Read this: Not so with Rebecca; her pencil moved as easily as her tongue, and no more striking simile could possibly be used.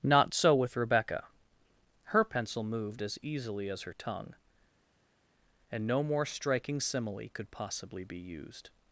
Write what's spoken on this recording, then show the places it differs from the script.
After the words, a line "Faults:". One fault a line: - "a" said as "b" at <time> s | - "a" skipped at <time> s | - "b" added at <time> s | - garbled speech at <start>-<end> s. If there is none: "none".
Not so with Rebecca; her pencil moved as easily as her tongue, and no more striking simile could possibly be used.
Faults:
none